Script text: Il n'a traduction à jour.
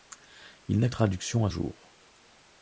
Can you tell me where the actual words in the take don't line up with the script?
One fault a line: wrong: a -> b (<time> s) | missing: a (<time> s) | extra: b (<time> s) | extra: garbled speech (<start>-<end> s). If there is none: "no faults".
no faults